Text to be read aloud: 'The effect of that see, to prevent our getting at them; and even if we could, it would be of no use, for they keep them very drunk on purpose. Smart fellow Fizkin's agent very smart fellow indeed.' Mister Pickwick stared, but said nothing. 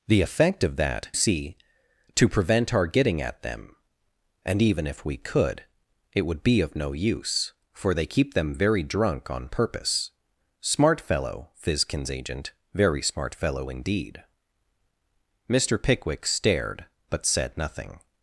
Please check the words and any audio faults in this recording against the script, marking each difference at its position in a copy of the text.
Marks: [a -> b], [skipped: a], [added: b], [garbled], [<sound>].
'The effect of that see, to prevent our getting at them; and even if we could, it would be of no use, for they keep them very drunk on purpose. Smart fellow Fizkin's agent very smart fellow indeed.' Mister Pickwick stared, but said nothing.